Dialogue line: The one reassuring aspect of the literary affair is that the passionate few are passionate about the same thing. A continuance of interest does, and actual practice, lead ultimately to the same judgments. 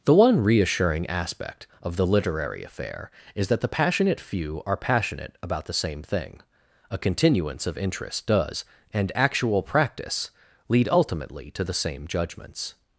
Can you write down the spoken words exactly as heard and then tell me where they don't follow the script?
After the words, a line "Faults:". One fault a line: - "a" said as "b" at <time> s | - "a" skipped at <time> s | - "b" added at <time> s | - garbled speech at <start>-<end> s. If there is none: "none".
The one reassuring aspect of the literary affair is that the passionate few are passionate about the same thing. A continuance of interest does, and actual practice, lead ultimately to the same judgments.
Faults:
none